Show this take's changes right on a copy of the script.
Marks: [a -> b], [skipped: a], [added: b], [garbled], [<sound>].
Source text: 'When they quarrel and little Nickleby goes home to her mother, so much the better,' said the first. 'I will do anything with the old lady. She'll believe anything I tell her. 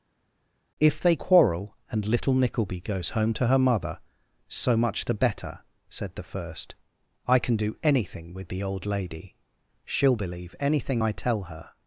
['When -> If] they quarrel and little Nickleby goes home to her mother, so much the better,' said the first. 'I [will -> can] do anything with the old lady. She'll believe anything I tell her.